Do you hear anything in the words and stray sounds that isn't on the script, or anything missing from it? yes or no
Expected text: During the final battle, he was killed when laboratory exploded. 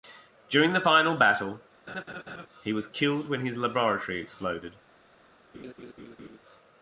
yes